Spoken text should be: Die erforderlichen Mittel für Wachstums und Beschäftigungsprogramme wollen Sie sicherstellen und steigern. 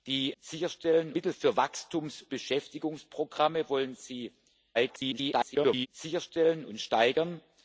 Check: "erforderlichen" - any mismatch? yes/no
yes